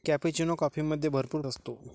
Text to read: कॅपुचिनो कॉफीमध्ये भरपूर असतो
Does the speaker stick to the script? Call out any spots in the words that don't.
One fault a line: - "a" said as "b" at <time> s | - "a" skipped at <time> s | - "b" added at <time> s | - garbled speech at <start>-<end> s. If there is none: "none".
none